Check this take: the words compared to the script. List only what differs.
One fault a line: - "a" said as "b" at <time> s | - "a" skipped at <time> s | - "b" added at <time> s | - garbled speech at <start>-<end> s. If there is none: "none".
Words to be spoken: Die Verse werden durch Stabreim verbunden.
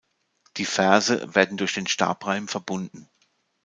- "den" added at 1.7 s